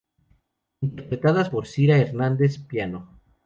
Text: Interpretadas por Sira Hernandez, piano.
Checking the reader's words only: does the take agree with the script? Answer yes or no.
yes